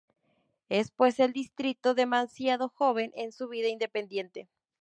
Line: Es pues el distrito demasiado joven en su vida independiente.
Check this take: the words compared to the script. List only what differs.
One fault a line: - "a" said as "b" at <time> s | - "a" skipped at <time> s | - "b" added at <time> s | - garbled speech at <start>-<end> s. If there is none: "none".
none